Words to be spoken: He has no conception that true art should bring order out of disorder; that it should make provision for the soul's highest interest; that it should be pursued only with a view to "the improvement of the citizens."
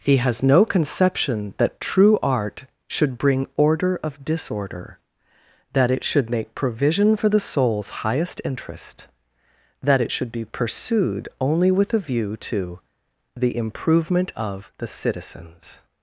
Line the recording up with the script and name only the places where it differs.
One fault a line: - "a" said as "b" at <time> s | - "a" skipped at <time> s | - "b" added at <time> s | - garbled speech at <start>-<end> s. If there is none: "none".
- "out" skipped at 4.0 s